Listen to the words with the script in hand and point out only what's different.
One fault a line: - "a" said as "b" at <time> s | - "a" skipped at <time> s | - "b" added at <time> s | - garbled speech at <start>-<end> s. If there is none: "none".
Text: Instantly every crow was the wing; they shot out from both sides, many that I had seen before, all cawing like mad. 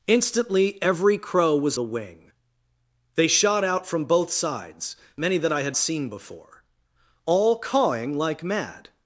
none